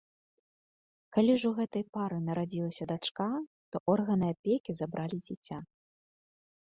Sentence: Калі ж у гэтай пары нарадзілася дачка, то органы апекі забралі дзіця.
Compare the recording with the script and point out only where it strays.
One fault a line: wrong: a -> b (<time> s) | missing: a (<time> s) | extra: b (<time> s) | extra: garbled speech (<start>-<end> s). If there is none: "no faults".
no faults